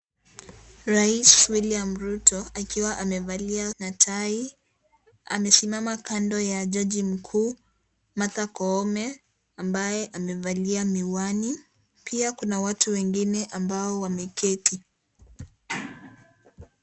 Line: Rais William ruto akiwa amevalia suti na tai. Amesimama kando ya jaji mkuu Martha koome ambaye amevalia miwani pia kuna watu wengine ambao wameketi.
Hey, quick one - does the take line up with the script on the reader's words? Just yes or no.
no